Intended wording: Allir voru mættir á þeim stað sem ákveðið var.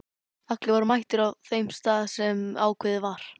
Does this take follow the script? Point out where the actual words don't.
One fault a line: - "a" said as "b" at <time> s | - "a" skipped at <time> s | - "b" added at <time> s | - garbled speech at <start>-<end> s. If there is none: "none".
none